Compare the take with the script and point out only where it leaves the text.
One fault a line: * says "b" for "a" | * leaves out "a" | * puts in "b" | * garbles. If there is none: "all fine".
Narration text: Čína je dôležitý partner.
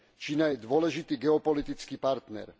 * puts in "geopolitický"